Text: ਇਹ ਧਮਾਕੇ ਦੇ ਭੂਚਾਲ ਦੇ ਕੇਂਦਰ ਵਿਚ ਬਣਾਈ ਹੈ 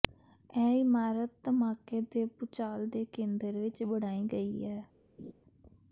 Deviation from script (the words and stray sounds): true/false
true